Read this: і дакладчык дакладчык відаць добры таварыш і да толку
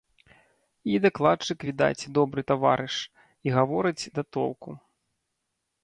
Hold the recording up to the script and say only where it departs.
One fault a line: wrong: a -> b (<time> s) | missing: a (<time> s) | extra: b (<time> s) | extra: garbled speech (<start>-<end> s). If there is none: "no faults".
missing: дакладчык (1.6 s)
extra: гаворыць (3.6 s)